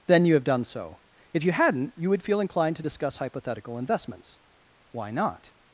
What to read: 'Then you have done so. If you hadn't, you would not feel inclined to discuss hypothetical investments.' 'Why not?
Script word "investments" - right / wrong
right